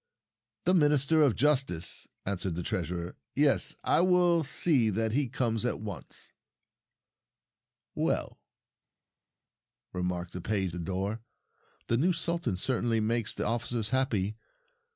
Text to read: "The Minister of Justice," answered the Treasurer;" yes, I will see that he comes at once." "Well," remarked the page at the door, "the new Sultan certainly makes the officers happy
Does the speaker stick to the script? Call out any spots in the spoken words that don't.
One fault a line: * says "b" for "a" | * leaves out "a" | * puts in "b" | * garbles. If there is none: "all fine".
* leaves out "at"